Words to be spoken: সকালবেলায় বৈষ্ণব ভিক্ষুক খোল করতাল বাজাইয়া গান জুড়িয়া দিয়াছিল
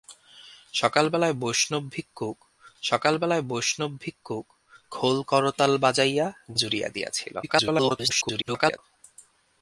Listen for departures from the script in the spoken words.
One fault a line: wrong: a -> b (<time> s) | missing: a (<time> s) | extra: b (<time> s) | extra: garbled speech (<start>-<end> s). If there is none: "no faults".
extra: সকালবেলায় বৈষ্ণব ভিক্ষুক (2.8 s)
missing: গান (6.3 s)
extra: garbled speech (7.4-8.8 s)